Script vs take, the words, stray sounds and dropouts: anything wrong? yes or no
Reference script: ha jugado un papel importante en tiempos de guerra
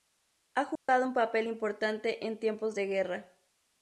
yes